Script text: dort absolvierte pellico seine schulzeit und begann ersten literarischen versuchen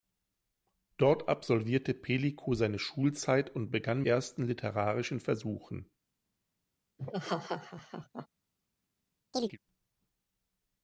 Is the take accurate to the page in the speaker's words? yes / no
yes